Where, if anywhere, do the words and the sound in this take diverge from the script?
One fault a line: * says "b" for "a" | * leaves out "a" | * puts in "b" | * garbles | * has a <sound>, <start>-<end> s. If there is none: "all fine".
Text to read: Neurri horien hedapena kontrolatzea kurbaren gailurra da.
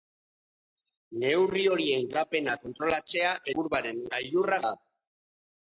all fine